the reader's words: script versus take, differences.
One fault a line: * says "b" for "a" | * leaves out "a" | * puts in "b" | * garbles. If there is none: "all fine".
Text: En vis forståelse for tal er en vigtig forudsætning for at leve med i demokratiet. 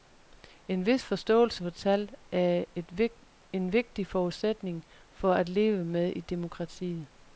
all fine